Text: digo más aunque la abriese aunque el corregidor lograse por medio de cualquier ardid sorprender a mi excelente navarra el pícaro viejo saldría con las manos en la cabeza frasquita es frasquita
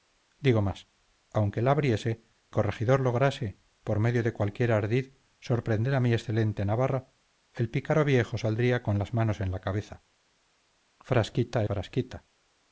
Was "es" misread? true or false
true